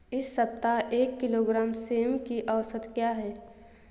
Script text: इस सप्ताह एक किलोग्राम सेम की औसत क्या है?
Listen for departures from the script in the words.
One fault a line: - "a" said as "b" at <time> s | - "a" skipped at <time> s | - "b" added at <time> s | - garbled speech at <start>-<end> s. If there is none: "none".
none